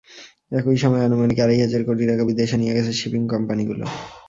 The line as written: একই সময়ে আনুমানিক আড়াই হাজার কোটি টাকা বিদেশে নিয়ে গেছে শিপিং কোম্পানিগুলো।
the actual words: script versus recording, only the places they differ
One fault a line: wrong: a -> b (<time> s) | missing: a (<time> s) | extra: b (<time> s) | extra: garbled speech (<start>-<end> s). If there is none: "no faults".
no faults